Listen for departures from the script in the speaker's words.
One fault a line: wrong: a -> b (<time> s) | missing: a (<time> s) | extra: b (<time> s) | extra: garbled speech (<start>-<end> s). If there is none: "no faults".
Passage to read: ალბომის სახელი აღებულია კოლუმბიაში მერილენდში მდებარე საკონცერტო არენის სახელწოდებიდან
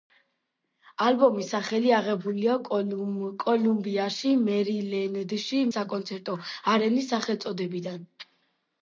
missing: მდებარე (5.6 s)